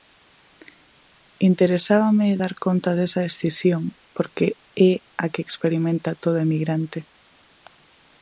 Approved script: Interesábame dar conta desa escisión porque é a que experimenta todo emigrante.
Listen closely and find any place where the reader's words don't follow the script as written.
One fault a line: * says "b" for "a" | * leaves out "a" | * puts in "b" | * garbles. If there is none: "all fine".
all fine